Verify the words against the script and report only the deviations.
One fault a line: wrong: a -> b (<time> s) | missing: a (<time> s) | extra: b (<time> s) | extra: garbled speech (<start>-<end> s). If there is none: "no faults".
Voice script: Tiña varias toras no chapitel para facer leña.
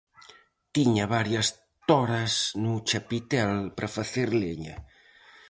no faults